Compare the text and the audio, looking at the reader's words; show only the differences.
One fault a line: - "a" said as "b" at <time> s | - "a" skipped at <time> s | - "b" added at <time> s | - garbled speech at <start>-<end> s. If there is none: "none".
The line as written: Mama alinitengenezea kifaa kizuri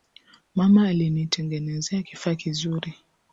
none